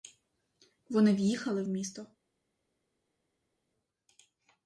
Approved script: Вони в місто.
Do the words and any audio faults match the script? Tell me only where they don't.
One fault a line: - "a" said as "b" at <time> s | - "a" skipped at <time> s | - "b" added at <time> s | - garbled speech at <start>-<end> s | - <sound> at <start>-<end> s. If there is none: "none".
- "в'їхали" added at 1.1 s